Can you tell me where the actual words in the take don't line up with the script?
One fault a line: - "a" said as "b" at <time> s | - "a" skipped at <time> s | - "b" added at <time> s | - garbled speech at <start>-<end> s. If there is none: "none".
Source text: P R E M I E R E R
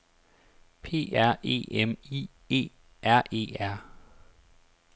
none